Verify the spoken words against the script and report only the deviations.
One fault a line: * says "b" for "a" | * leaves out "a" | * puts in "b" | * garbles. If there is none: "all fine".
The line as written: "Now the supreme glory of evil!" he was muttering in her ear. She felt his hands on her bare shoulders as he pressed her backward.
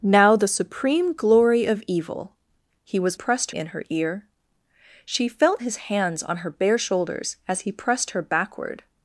* says "pressed" for "muttering"